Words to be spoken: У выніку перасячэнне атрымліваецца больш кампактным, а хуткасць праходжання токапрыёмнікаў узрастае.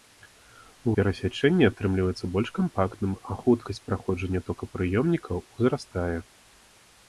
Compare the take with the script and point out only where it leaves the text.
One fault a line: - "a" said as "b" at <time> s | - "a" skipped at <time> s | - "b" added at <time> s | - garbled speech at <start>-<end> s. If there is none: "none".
- "выніку" skipped at 0.9 s